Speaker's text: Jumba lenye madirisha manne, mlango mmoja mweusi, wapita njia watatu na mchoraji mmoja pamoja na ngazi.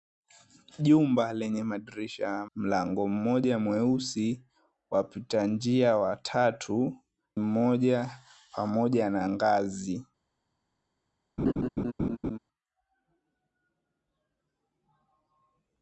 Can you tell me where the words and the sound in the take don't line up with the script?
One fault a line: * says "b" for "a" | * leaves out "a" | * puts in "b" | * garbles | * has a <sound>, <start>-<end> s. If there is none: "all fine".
* leaves out "manne"
* leaves out "na mchoraji"
* has a laugh, 11.4-12.4 s